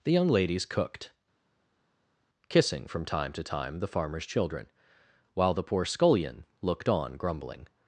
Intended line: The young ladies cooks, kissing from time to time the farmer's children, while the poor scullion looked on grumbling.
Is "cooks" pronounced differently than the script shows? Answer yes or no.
yes